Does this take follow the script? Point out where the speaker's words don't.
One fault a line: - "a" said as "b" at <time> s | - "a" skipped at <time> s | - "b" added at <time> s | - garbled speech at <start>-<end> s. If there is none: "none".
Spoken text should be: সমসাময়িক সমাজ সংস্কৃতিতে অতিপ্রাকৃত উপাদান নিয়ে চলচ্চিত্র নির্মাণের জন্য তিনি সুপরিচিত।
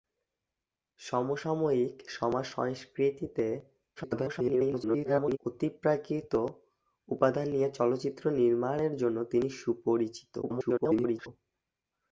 - garbled speech at 4.0-5.4 s
- garbled speech at 10.4-11.3 s